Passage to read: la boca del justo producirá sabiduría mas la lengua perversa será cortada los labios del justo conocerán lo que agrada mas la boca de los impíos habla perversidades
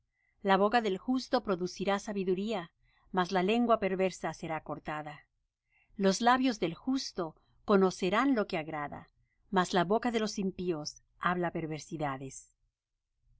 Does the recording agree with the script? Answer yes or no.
yes